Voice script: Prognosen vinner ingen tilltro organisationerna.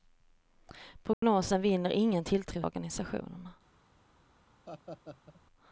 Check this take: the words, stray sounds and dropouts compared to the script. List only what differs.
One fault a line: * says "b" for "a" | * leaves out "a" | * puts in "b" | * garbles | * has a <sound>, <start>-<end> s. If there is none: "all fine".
* has a dropout, 1.1-1.2 s
* has a laugh, 4.7-5.4 s